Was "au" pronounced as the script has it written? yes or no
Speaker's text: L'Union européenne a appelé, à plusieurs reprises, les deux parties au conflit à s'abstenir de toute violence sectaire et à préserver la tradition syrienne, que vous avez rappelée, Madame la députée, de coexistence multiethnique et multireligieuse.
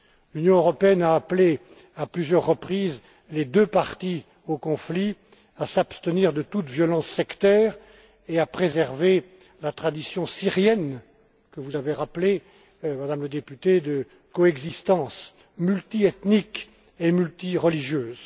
yes